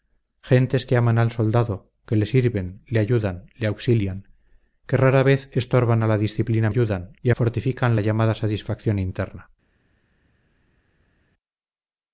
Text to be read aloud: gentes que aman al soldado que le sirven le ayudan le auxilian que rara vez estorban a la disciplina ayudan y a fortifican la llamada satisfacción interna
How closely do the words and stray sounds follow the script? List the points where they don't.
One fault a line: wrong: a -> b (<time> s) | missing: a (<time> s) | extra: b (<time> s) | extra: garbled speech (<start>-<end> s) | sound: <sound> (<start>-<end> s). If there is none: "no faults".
no faults